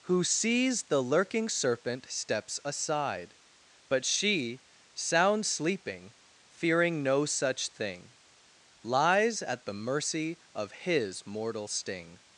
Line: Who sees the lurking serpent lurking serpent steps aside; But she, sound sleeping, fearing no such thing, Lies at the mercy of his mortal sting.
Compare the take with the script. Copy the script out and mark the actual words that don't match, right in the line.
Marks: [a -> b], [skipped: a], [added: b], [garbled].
Who sees the lurking serpent [skipped: lurking serpent] steps aside; But she, sound sleeping, fearing no such thing, Lies at the mercy of his mortal sting.